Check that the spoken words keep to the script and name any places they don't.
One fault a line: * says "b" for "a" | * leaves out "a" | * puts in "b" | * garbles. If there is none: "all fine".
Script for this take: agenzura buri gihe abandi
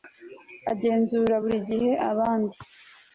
all fine